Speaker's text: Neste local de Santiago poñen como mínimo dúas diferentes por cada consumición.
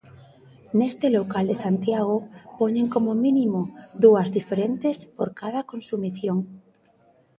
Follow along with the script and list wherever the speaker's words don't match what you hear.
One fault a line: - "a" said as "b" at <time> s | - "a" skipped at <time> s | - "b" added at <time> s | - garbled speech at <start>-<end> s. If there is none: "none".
none